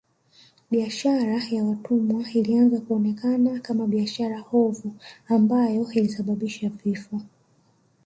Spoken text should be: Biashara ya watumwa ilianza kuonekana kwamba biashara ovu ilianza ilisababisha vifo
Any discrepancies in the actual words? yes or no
yes